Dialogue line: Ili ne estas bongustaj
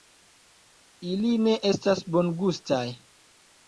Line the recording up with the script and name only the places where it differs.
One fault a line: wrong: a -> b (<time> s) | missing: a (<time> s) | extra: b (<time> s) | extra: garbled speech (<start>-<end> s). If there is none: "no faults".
no faults